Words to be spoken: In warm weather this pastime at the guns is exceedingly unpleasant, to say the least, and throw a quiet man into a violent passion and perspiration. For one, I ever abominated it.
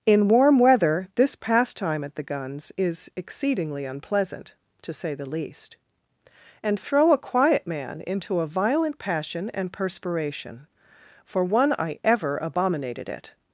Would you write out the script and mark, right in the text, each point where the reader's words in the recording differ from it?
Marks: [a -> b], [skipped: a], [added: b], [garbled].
In warm weather this pastime at the guns is exceedingly unpleasant, to say the least, and throw a quiet man into a violent passion and perspiration. For one, I ever abominated it.